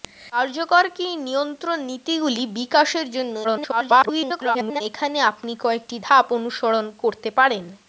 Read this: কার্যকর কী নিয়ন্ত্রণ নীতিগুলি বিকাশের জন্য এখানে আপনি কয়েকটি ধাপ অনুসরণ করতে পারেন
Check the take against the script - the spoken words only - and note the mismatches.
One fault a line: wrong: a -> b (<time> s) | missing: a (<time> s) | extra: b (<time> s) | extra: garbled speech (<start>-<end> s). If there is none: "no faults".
extra: garbled speech (3.4-4.8 s)